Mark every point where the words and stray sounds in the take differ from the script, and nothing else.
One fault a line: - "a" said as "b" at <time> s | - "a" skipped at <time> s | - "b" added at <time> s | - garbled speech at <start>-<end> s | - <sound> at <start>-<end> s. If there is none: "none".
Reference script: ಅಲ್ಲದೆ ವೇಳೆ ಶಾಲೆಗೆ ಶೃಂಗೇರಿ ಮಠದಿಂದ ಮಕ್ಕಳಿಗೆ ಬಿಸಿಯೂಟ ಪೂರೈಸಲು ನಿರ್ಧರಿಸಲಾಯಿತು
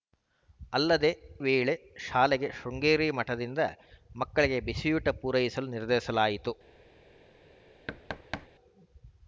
- thud at 7.9-8.5 s